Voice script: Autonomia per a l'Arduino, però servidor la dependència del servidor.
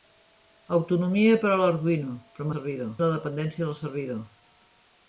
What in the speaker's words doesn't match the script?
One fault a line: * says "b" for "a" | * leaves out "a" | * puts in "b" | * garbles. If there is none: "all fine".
all fine